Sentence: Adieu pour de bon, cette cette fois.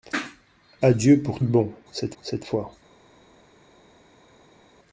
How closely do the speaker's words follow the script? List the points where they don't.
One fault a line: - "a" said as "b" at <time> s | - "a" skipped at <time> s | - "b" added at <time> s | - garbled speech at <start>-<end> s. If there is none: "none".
none